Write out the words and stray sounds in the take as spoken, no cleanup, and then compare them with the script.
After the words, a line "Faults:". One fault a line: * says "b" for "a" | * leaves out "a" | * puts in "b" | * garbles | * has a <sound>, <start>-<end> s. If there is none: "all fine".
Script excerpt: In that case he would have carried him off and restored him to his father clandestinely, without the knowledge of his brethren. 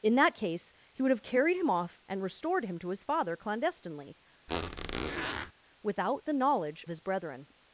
In that case he would have carried him off and restored him to his father clandestinely, without the knowledge his brethren.
Faults:
* has a squeak, 4.5-5.5 s
* leaves out "of"